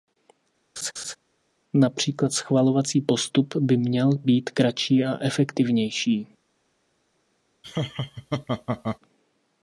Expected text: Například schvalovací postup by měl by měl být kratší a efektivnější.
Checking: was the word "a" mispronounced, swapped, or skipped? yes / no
no